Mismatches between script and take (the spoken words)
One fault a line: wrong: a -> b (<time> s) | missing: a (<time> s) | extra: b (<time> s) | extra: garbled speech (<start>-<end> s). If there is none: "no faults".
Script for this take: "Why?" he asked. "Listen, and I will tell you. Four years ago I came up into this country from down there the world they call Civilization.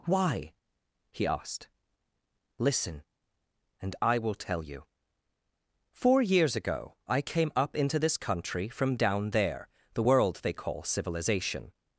no faults